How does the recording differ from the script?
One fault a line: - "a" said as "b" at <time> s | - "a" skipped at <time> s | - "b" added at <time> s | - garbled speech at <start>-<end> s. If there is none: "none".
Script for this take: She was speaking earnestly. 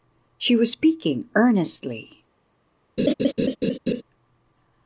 none